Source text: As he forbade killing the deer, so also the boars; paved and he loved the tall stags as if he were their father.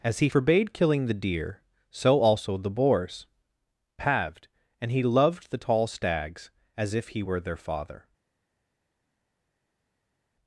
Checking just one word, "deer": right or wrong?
right